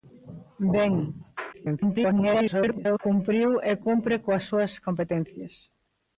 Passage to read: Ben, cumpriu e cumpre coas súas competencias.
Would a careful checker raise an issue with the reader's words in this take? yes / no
yes